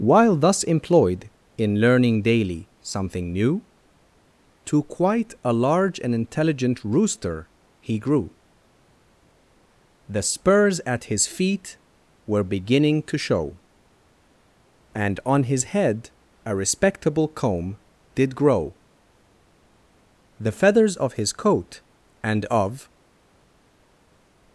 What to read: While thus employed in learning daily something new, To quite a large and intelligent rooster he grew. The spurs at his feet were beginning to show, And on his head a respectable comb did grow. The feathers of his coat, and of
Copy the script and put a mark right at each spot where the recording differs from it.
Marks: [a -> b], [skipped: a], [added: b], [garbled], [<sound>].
While thus employed in learning daily something new, To quite a large and intelligent rooster he grew. The spurs at his feet were beginning to show, And on his head a respectable comb did grow. The feathers of his coat, and of